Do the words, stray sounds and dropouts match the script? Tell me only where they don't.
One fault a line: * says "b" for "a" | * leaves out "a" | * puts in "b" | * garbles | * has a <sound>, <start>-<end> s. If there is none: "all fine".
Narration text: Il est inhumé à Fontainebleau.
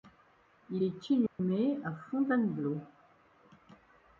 * has a dropout, 1.3-1.4 s